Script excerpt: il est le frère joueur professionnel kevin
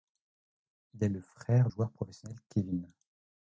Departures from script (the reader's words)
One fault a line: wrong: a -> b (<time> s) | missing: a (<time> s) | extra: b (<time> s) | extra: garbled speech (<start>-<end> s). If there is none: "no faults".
no faults